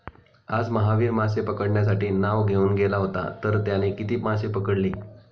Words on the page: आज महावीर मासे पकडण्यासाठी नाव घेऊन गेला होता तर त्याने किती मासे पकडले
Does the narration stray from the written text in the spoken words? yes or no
no